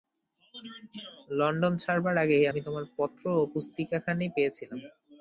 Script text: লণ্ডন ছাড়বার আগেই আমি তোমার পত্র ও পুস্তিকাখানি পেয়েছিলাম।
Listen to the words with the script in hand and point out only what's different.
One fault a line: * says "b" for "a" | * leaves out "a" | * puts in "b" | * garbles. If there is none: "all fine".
all fine